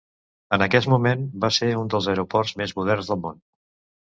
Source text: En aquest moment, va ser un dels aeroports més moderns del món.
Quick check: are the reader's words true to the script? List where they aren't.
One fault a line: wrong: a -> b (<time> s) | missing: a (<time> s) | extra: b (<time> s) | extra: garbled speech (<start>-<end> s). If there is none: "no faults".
no faults